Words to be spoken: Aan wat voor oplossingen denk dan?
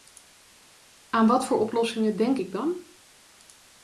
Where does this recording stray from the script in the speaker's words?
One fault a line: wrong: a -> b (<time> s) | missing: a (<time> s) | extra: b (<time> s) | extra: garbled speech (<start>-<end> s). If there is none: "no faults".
extra: ik (2.3 s)